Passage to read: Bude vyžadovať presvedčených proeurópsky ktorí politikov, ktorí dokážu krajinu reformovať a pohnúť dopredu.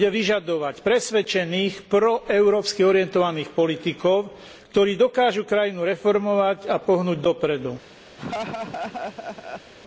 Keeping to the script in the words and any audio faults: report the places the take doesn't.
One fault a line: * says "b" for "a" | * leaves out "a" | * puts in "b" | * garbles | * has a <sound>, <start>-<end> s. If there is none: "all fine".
* says "orientovaných" for "ktorí"
* has a laugh, 8.2-9.7 s